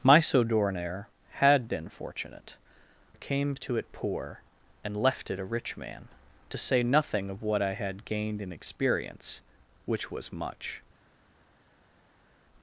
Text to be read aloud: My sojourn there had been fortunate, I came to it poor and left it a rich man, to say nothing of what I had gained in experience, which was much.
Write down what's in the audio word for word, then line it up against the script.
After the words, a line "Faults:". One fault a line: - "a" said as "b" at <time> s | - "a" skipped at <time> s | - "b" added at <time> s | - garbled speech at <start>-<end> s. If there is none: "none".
My sojourn there had been fortunate, I came to it poor and left it a rich man, to say nothing of what I had gained in experience, which was much.
Faults:
none